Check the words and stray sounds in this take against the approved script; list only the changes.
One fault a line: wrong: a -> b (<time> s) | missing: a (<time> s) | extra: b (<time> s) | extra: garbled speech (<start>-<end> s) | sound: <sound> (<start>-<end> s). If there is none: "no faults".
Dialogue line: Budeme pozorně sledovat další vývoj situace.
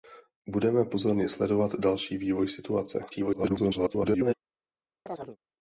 extra: garbled speech (3.1-4.3 s)
sound: chirp (5.1-5.4 s)